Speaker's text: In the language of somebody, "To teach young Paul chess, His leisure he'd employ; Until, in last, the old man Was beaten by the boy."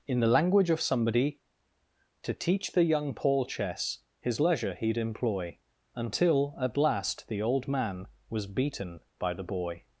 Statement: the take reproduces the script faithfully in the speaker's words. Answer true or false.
false